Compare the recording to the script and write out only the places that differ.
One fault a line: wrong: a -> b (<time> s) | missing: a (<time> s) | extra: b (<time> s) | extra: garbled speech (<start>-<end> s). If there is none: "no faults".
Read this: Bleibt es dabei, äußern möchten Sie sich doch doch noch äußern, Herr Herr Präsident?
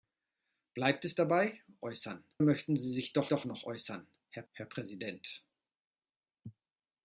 no faults